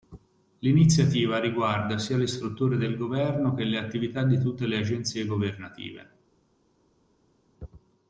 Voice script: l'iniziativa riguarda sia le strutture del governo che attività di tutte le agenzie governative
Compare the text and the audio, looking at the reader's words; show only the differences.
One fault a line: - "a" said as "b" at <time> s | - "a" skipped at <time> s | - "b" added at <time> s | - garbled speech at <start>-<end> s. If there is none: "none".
- "le" added at 3.6 s